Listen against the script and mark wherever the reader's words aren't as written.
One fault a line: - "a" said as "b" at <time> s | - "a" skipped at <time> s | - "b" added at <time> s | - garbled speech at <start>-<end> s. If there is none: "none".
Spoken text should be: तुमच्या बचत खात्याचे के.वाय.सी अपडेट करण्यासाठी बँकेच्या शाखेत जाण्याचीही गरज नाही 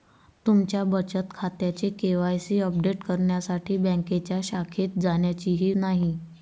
- "गरज" skipped at 5.7 s